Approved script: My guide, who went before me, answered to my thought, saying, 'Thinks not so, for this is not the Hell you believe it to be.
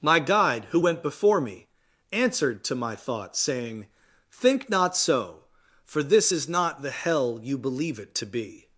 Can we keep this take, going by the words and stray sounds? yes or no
no